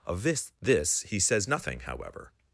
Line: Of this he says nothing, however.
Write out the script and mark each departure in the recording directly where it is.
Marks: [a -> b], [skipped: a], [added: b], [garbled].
Of this [added: this] he says nothing, however.